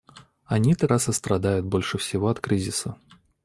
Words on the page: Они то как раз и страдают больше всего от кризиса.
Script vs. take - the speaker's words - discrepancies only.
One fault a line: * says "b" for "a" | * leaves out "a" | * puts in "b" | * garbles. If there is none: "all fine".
* leaves out "как"